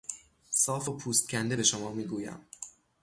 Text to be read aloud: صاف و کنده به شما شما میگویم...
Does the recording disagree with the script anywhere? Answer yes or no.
yes